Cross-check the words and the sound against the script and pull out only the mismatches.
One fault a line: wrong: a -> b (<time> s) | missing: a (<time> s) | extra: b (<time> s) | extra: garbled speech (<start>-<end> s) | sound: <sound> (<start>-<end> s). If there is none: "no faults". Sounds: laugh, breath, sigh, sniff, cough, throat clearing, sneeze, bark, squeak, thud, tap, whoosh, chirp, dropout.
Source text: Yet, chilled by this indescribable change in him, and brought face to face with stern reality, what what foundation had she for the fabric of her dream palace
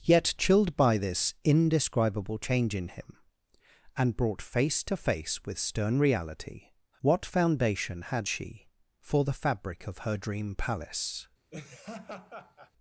missing: what (7.2 s)
sound: laugh (11.5-12.7 s)